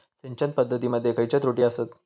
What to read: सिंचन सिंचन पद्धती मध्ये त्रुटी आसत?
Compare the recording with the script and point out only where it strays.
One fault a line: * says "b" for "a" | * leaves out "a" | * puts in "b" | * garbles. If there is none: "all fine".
* leaves out "सिंचन"
* puts in "खयचे"